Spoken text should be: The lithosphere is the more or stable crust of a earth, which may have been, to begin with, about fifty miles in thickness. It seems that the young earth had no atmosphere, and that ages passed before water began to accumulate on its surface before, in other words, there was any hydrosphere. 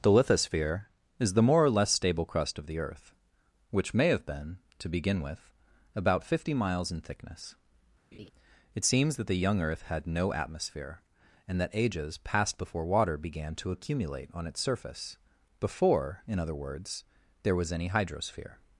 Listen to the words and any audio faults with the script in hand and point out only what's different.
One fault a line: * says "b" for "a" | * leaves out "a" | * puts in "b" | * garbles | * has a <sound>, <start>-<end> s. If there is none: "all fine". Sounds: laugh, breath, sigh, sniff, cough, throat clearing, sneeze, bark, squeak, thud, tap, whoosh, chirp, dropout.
* puts in "less"
* says "the" for "a"
* has a laugh, 8.1-8.3 s